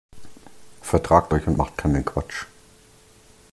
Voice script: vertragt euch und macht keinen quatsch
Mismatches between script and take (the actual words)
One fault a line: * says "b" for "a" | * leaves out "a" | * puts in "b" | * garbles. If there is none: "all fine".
all fine